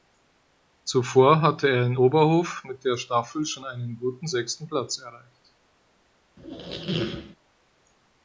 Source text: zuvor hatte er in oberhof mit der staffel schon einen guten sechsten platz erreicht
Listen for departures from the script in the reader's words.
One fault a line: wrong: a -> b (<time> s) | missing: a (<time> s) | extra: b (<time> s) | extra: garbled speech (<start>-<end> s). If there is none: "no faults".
no faults